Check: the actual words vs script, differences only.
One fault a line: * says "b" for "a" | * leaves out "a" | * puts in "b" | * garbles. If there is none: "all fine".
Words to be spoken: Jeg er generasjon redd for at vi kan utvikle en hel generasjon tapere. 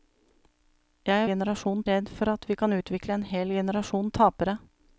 all fine